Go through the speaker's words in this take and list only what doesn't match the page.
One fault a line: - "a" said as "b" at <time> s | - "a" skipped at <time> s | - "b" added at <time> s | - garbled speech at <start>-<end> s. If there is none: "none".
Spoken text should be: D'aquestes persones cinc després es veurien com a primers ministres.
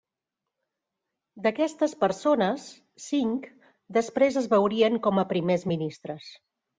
none